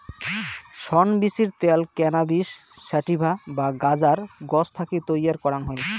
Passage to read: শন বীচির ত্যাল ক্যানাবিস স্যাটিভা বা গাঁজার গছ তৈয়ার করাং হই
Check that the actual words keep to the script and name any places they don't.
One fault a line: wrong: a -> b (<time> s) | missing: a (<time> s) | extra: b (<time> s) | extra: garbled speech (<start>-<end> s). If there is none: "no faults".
extra: থাকি (4.8 s)